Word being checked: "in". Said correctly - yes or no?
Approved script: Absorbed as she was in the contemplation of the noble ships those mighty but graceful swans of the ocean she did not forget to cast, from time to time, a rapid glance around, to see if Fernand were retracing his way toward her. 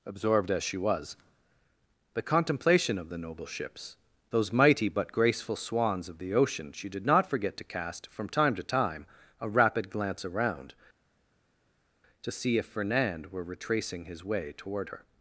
no